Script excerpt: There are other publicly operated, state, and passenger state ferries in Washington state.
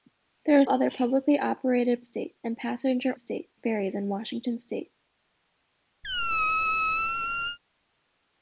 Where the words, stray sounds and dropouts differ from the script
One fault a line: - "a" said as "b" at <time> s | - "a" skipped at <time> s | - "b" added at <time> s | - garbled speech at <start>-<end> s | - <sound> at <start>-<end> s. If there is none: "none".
- squeak at 6.0-7.6 s